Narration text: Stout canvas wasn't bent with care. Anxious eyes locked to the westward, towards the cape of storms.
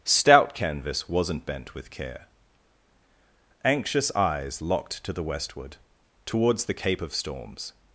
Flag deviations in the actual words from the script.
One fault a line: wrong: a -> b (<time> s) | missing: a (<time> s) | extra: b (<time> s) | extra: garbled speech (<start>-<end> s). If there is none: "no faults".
no faults